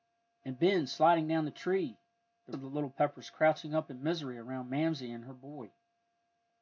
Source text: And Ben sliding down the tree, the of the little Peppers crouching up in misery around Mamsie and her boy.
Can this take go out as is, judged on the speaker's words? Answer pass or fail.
pass